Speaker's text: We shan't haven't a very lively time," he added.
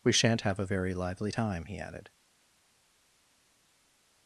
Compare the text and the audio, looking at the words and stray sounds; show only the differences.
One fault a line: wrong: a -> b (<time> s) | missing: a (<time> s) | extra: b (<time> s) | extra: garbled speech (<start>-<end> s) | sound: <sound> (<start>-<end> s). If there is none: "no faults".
wrong: haven't -> have (0.4 s)